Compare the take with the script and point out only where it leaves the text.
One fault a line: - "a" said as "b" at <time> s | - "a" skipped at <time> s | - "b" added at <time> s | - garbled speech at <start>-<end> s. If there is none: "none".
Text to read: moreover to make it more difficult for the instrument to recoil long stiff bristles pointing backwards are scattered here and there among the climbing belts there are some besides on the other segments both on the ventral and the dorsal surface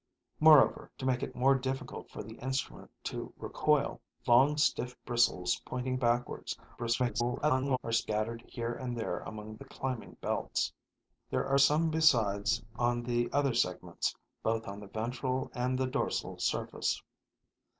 - garbled speech at 6.8-7.8 s